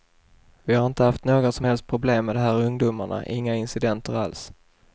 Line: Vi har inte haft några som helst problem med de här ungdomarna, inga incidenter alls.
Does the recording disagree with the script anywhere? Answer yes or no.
no